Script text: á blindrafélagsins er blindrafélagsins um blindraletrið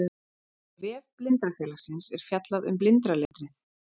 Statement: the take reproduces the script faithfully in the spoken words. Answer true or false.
false